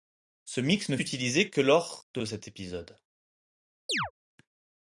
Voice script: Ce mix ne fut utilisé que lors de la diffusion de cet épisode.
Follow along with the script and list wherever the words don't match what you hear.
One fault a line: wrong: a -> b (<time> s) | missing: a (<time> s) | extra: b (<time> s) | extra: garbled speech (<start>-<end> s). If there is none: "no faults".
missing: fut (1.0 s)
missing: la diffusion (2.2 s)